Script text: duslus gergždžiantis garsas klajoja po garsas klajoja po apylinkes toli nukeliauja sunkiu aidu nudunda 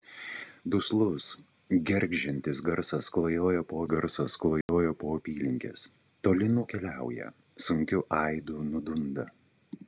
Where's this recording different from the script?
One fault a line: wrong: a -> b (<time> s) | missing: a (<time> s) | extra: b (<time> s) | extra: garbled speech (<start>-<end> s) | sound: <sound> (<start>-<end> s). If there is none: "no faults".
sound: dropout (4.6-4.7 s)